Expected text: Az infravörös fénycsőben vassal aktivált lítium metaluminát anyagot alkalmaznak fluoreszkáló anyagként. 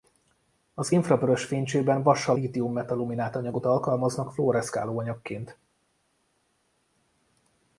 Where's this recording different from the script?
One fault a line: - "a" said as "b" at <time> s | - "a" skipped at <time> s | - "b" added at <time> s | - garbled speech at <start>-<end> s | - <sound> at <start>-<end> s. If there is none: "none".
- "aktivált" skipped at 2.4 s